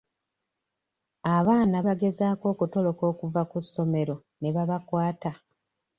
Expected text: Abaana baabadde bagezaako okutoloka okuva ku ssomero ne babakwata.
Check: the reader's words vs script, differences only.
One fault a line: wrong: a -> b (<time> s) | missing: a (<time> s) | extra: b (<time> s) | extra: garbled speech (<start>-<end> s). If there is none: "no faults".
missing: baabadde (1.8 s)